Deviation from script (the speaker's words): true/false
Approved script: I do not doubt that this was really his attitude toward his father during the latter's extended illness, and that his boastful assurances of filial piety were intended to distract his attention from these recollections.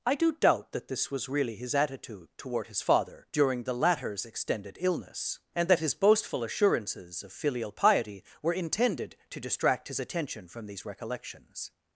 true